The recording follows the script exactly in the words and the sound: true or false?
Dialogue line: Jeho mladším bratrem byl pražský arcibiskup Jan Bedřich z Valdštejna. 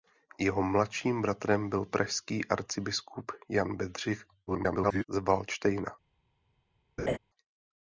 false